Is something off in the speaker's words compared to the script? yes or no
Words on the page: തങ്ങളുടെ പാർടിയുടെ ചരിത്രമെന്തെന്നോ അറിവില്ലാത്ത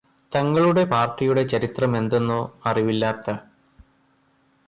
no